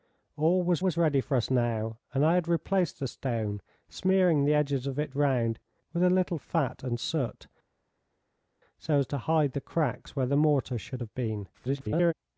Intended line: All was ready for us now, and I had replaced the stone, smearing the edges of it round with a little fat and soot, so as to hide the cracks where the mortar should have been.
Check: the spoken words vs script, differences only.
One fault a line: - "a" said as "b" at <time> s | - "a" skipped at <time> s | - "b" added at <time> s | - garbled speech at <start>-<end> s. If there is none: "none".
- "was" added at 0.8 s
- garbled speech at 11.5-12.1 s